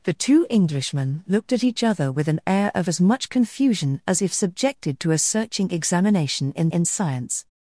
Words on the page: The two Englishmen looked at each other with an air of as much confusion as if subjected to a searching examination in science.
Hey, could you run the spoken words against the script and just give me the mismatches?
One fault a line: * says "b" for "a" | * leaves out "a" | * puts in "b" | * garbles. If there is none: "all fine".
* puts in "in"